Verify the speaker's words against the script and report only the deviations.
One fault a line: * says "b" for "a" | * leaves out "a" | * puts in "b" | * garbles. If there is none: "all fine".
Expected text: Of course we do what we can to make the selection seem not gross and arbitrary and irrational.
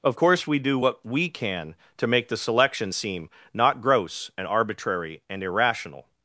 all fine